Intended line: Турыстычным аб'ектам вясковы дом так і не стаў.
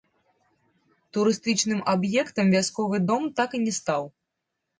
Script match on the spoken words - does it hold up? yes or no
yes